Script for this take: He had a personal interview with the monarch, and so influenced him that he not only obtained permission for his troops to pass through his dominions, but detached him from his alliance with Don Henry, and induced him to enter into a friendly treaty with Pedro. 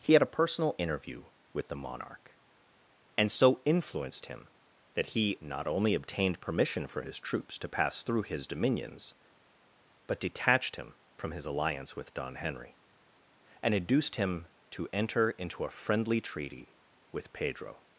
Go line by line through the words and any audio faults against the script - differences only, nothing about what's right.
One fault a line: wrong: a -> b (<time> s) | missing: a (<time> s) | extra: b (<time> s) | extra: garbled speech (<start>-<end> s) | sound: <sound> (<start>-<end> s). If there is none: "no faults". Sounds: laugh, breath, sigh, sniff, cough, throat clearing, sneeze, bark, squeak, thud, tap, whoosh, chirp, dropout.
no faults